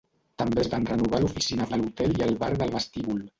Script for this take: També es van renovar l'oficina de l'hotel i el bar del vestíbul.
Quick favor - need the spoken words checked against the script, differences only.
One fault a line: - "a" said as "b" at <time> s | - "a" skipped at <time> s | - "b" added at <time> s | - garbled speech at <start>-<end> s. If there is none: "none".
none